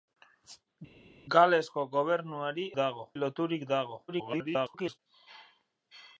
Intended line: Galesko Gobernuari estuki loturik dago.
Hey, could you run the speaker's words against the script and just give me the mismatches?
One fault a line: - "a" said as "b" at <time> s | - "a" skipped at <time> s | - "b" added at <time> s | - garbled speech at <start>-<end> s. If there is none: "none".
- "estuki" said as "dago" at 2.8 s
- garbled speech at 4.1-5.0 s